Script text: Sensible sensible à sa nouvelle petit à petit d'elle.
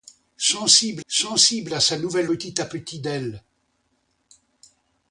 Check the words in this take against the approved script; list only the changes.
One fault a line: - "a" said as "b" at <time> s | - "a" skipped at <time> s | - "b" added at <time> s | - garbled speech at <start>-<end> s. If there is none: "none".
none